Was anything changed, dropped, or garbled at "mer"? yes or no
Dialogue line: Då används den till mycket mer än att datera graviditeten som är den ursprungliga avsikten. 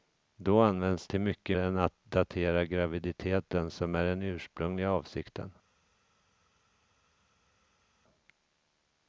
yes